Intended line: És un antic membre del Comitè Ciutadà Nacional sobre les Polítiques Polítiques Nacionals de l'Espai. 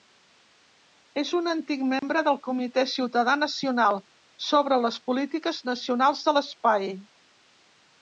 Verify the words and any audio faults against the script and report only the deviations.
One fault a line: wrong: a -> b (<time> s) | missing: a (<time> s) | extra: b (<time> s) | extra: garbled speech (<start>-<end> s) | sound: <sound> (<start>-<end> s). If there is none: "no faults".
sound: dropout (2.0-2.0 s)
missing: Polítiques (5.7 s)